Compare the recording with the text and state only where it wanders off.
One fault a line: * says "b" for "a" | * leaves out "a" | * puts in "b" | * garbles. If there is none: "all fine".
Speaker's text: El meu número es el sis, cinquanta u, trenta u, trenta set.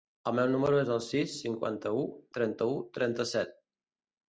all fine